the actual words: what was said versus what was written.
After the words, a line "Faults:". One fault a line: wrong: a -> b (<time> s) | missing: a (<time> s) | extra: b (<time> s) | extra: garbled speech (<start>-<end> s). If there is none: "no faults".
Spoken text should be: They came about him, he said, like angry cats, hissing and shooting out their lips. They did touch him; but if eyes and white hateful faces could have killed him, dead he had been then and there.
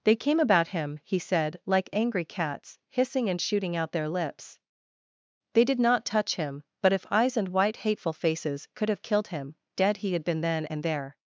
They came about him, he said, like angry cats, hissing and shooting out their lips. They did not touch him; but if eyes and white hateful faces could have killed him, dead he had been then and there.
Faults:
extra: not (5.8 s)